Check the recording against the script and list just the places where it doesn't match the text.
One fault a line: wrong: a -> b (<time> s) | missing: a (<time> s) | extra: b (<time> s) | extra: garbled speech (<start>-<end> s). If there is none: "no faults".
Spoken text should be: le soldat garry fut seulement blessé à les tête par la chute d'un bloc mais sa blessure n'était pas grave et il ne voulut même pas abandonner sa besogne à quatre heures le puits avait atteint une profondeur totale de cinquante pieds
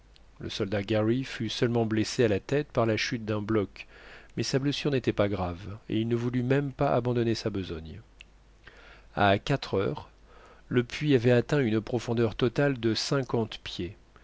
wrong: les -> la (2.3 s)